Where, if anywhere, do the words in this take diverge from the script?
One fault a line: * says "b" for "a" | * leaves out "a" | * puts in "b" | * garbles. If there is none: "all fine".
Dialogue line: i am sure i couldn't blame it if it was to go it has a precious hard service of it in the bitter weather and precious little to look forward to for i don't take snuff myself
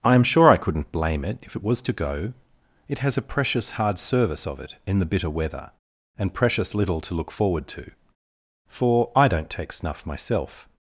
all fine